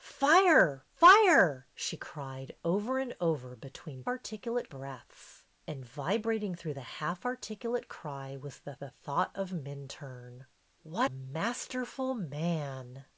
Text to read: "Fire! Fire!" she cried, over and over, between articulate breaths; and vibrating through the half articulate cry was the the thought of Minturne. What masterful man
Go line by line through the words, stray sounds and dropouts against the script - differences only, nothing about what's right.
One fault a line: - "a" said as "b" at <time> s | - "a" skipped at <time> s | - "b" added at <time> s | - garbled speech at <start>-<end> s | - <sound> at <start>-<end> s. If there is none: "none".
none